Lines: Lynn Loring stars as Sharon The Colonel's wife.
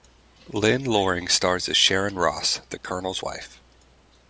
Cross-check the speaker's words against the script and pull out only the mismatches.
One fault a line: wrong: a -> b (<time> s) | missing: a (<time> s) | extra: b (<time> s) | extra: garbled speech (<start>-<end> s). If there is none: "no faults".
extra: Ross (2.1 s)